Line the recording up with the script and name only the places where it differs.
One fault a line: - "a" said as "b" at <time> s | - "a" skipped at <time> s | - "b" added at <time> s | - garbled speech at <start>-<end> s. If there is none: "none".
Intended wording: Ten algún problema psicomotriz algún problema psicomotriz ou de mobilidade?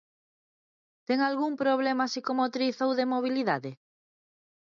- "algún problema psicomotriz" skipped at 2.8 s